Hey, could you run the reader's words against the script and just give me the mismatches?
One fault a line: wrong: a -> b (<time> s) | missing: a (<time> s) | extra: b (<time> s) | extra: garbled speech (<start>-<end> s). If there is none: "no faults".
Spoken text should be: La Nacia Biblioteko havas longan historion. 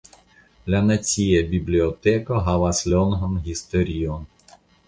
no faults